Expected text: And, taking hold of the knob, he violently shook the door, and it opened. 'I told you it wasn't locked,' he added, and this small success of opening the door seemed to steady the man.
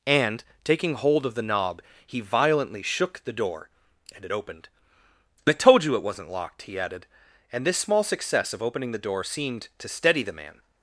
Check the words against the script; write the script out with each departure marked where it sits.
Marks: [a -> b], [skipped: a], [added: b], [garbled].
And, taking hold of the knob, he violently shook the door, and it opened. 'I told you it wasn't locked,' he added, and this small success of opening the door seemed to steady the man.